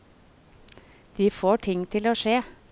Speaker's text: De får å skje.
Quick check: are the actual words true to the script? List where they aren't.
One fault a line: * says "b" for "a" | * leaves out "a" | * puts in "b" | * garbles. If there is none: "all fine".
* puts in "ting til"